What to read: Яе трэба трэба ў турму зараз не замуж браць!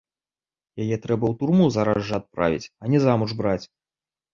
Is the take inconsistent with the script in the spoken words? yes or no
yes